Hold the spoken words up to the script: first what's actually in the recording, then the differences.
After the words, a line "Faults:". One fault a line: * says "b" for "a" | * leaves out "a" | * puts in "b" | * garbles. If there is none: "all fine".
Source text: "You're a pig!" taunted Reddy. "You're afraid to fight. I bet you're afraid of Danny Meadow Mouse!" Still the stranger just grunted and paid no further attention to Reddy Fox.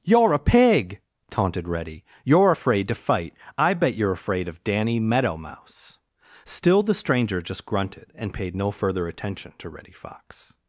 "You're a pig!" taunted Reddy. "You're afraid to fight. I bet you're afraid of Danny Meadow Mouse!" Still the stranger just grunted and paid no further attention to Reddy Fox.
Faults:
all fine